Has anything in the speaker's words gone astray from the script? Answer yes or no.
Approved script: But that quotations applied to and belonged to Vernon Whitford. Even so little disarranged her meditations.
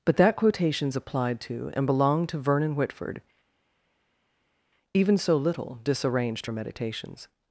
no